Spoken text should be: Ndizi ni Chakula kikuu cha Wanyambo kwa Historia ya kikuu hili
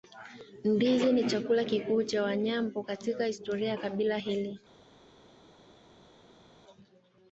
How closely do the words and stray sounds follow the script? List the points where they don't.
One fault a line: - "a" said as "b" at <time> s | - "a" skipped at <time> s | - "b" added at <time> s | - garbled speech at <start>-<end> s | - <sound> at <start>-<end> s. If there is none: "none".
- "kwa" said as "katika" at 2.8 s
- "kikuu" said as "kabila" at 3.8 s